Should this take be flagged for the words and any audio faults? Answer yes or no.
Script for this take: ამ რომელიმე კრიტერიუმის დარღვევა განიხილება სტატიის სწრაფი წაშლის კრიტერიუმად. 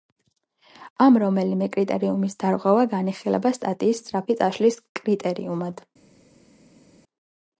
no